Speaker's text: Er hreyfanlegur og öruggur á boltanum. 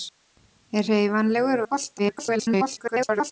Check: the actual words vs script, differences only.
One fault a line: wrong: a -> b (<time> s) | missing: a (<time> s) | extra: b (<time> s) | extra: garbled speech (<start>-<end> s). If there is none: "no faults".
missing: og öruggur (1.6 s)
extra: garbled speech (2.0-3.3 s)